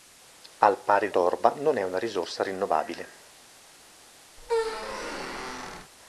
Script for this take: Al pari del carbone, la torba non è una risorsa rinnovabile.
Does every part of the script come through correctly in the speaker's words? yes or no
no